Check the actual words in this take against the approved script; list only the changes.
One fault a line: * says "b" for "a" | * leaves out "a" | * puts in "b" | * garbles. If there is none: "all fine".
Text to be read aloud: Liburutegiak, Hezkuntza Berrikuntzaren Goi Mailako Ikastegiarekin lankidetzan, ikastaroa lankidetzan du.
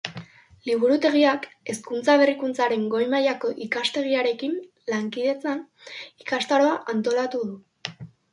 * says "antolatu" for "lankidetzan"